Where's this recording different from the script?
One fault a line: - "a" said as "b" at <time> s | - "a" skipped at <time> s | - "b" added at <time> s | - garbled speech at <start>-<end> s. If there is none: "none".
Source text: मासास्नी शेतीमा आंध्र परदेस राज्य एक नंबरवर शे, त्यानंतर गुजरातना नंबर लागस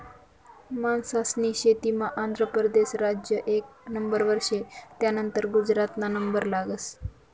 none